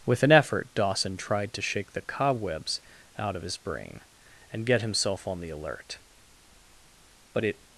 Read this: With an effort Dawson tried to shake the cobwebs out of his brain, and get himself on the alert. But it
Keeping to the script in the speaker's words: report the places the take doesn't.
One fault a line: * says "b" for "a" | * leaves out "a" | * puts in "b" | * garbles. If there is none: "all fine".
all fine